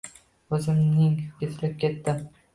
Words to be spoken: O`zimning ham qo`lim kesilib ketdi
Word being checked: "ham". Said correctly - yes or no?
no